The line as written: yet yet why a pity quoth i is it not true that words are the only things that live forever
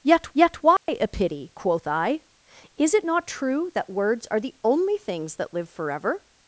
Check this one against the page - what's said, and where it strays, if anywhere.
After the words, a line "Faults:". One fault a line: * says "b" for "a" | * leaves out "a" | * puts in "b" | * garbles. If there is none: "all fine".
yet yet why a pity quoth i is it not true that words are the only things that live forever
Faults:
all fine